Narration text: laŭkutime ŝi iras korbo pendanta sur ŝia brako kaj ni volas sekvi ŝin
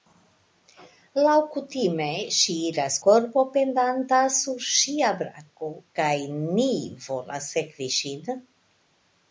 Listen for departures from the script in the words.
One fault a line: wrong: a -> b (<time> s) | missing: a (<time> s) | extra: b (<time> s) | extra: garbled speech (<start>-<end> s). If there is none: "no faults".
no faults